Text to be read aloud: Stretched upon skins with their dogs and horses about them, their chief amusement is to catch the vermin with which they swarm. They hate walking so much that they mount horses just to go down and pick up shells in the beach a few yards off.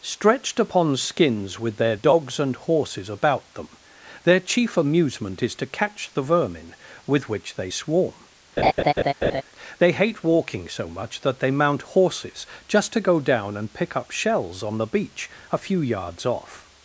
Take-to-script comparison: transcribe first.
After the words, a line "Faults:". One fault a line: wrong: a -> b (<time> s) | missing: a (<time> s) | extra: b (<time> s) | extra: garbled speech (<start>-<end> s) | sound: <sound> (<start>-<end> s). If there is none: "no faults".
Stretched upon skins with their dogs and horses about them, their chief amusement is to catch the vermin with which they swarm. They hate walking so much that they mount horses just to go down and pick up shells on the beach a few yards off.
Faults:
sound: laugh (8.6-9.4 s)
wrong: in -> on (14.6 s)